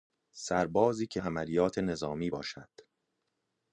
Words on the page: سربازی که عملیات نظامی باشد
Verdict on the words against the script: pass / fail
pass